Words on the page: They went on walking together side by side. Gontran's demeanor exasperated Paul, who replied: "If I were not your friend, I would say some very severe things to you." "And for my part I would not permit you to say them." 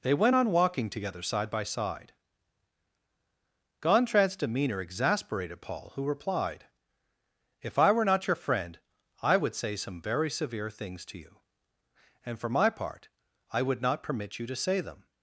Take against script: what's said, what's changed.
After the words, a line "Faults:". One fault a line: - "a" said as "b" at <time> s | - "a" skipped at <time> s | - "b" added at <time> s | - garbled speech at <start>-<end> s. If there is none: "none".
They went on walking together side by side. Gontran's demeanor exasperated Paul, who replied: "If I were not your friend, I would say some very severe things to you." "And for my part I would not permit you to say them."
Faults:
none